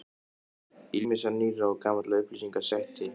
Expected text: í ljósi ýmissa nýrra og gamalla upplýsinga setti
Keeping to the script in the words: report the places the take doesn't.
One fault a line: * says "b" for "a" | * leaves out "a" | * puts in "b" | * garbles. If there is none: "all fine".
* leaves out "ljósi"